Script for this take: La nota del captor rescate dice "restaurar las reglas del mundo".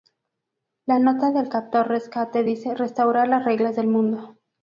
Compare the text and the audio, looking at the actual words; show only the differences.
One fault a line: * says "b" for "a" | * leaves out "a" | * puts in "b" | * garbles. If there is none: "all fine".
all fine